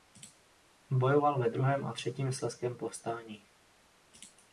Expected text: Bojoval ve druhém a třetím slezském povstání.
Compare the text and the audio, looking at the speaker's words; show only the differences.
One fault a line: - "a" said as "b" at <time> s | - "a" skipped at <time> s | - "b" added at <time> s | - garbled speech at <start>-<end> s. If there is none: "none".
none